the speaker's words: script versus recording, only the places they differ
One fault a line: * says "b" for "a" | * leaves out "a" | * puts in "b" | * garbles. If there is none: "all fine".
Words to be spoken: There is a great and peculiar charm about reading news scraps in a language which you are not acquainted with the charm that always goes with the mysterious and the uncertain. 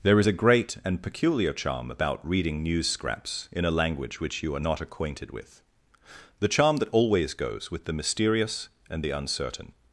all fine